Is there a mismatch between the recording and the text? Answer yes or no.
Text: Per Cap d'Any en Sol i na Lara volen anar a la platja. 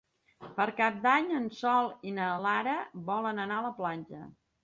no